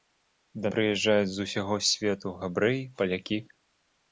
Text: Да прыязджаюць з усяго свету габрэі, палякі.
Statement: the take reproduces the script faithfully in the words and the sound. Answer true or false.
true